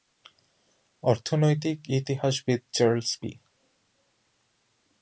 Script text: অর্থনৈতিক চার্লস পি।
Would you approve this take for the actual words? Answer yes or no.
no